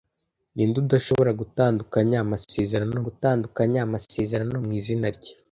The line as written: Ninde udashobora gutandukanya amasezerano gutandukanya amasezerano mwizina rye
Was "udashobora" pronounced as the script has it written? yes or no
yes